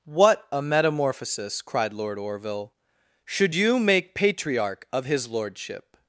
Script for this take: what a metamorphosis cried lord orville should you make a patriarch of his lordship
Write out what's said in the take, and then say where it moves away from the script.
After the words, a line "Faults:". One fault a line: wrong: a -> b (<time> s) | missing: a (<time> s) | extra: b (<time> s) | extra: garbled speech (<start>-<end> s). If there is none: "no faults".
what a metamorphosis cried lord orville should you make patriarch of his lordship
Faults:
missing: a (4.1 s)